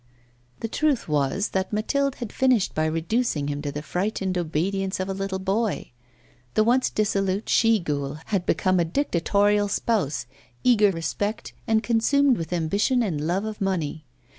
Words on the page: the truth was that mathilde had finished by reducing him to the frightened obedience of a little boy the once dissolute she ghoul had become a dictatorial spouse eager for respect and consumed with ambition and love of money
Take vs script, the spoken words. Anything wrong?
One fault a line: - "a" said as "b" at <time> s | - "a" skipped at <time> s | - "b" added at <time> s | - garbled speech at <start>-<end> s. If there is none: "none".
- "for" skipped at 10.9 s